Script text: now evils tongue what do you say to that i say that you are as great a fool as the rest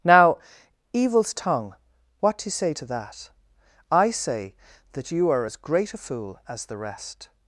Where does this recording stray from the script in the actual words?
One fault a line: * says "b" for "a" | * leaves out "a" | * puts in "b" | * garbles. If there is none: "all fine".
all fine